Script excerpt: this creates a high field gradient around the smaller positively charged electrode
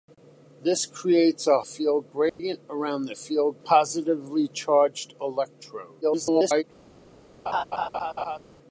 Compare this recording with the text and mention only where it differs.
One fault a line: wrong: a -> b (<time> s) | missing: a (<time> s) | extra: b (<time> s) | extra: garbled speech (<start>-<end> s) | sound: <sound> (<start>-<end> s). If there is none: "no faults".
missing: high (1.6 s)
sound: dropout (2.3-2.4 s)
wrong: smaller -> field (3.1 s)
extra: garbled speech (6.0-6.6 s)
sound: laugh (7.5-8.4 s)